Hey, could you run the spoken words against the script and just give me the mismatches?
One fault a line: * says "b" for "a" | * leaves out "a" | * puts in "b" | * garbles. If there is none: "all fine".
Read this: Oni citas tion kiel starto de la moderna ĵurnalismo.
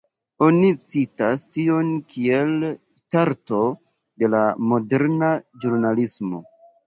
all fine